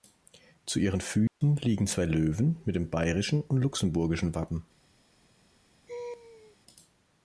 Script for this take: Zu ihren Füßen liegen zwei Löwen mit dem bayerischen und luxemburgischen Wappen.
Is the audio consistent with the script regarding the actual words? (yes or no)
yes